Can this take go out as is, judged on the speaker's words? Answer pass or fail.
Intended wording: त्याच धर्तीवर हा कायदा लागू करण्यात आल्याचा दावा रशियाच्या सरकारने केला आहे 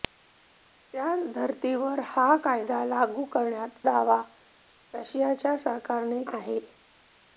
fail